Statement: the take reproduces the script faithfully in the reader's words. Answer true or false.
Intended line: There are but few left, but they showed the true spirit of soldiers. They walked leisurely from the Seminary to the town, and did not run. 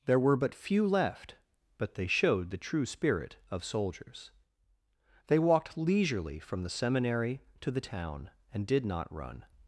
false